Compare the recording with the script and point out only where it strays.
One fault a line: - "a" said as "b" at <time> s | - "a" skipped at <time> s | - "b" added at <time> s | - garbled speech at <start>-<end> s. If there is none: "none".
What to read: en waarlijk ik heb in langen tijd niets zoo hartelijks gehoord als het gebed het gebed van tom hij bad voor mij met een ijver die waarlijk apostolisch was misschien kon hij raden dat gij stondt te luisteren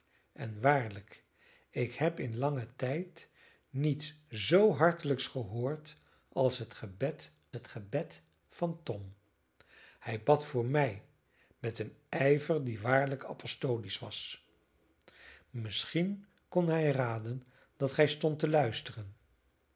none